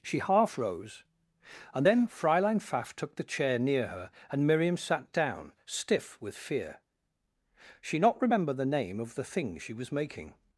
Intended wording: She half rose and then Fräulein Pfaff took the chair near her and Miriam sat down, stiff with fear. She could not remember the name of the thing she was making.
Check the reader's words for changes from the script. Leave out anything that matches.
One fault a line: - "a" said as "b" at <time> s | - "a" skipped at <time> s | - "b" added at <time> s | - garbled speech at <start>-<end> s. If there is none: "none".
- "could" skipped at 8.0 s